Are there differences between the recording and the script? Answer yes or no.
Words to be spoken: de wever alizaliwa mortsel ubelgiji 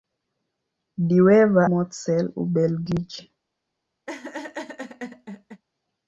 yes